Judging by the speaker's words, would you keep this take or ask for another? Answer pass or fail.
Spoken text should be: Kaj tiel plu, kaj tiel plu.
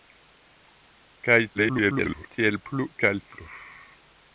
fail